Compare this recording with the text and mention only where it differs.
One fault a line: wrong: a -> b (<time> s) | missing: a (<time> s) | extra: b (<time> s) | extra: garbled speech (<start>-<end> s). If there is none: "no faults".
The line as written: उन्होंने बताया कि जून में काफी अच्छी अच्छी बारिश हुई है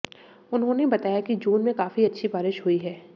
missing: अच्छी (2.3 s)